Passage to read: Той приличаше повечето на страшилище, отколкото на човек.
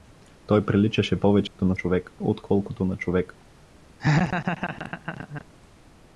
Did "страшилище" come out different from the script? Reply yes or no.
yes